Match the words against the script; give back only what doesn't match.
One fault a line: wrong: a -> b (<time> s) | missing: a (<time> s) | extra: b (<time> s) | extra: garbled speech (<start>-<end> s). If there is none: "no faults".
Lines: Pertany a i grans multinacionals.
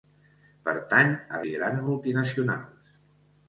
no faults